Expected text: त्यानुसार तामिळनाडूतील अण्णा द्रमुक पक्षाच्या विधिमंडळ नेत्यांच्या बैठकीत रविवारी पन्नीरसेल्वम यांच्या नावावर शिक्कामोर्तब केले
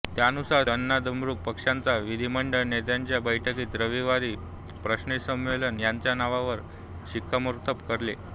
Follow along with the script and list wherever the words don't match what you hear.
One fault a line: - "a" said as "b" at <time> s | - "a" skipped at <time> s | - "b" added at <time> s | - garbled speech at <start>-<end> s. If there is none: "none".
- "तामिळनाडूतील" skipped at 0.6 s